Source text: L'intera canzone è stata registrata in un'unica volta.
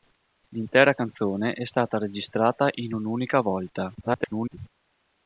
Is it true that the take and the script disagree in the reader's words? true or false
true